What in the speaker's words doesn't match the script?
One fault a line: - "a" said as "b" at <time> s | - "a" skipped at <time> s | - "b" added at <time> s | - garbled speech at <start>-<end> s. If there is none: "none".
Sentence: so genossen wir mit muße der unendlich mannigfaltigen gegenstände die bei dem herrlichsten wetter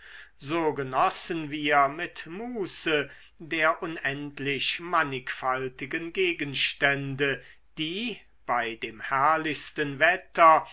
none